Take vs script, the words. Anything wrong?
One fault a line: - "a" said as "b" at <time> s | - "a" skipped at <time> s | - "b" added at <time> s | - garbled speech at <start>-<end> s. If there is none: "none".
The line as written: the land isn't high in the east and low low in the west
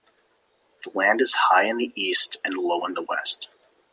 - "isn't" said as "is" at 1.2 s
- "low" skipped at 2.9 s